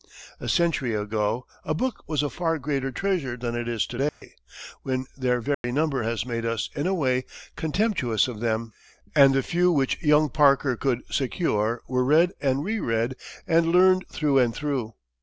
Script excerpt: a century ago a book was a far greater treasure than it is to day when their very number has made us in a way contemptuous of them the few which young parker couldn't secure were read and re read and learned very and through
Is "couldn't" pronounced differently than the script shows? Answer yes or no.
yes